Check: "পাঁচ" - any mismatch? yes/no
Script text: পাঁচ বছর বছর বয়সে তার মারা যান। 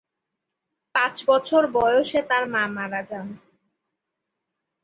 no